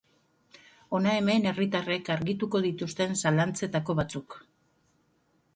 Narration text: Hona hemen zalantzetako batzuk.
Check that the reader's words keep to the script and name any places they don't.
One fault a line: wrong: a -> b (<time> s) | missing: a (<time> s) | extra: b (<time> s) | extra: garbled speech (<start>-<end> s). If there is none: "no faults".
extra: herritarrek argituko dituzten (1.5 s)